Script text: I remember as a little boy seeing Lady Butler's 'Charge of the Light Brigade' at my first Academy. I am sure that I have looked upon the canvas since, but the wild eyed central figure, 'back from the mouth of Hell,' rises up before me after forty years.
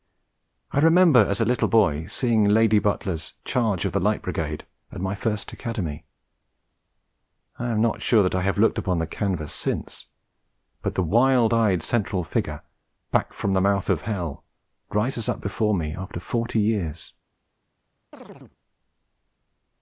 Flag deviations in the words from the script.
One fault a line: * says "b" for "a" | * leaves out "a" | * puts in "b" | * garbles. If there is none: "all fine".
* puts in "not"